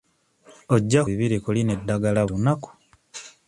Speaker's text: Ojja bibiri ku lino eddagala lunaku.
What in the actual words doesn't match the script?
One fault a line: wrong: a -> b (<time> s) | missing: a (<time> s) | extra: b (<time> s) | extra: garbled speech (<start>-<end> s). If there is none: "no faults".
no faults